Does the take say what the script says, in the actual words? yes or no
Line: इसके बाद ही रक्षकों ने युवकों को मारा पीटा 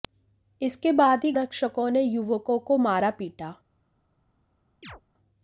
yes